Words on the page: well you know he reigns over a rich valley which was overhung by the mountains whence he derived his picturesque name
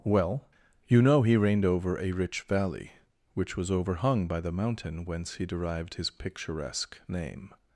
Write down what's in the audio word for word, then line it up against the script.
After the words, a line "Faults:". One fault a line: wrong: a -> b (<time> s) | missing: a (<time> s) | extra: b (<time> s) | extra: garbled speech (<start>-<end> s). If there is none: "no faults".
well you know he reigned over a rich valley which was overhung by the mountain whence he derived his picturesque name
Faults:
wrong: reigns -> reigned (1.4 s)
wrong: mountains -> mountain (4.5 s)